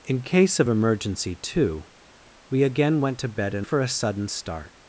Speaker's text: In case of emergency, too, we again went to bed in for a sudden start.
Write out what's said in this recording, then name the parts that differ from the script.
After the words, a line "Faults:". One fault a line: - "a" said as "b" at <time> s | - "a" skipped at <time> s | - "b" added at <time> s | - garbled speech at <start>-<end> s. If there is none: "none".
In case of emergency, too, we again went to bed in for a sudden start.
Faults:
none